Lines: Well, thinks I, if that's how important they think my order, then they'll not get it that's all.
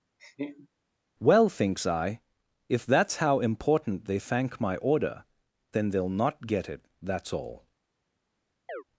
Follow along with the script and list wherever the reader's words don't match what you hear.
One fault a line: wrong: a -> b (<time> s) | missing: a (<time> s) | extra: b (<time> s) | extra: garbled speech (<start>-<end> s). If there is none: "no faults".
wrong: think -> thank (4.2 s)